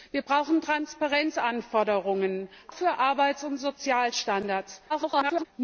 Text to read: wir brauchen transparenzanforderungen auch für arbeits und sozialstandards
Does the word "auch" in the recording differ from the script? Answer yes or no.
yes